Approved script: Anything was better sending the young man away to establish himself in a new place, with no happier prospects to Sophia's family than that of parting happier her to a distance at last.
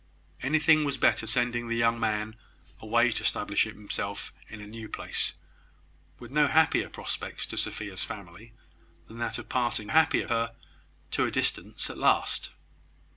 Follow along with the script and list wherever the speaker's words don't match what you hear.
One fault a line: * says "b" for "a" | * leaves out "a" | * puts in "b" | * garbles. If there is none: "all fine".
all fine